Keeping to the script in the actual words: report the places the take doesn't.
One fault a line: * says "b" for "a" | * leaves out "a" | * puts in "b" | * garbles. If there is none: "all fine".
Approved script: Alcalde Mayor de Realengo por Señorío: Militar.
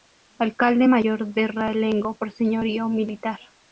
all fine